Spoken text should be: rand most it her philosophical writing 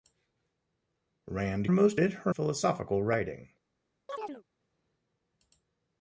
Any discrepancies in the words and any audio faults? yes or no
yes